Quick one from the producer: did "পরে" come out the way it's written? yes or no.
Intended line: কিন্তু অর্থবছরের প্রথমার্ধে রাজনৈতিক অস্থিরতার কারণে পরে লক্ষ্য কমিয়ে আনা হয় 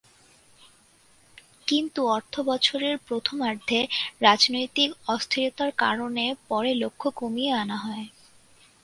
yes